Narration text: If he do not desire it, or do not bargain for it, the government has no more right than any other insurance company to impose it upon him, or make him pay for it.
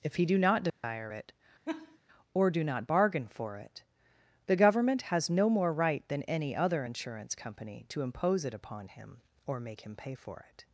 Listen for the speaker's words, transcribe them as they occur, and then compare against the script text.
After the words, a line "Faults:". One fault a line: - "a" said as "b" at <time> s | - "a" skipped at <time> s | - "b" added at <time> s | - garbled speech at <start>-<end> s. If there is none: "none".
If he do not desire it, or do not bargain for it, the government has no more right than any other insurance company to impose it upon him, or make him pay for it.
Faults:
none